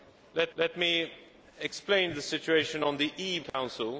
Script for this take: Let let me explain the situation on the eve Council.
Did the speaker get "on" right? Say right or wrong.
right